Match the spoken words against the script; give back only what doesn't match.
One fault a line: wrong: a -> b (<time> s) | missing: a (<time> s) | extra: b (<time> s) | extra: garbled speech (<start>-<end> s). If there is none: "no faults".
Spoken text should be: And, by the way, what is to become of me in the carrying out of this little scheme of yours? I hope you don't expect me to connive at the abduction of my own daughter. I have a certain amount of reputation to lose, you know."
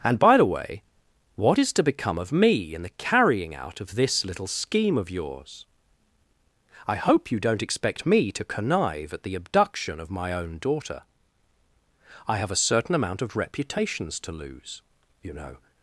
wrong: reputation -> reputations (13.4 s)